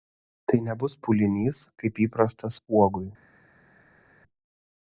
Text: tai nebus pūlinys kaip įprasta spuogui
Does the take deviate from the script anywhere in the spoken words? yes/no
no